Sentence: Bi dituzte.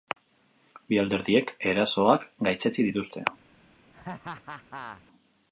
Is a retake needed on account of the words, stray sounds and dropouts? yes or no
yes